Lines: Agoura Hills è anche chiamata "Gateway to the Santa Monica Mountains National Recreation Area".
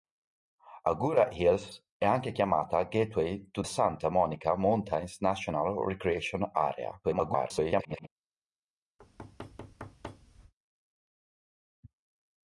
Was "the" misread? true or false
true